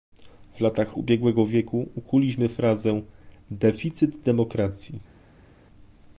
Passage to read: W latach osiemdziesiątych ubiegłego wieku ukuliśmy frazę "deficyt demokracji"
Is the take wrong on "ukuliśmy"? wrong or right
right